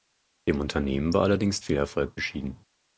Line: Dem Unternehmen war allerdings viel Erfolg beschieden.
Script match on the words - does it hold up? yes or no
yes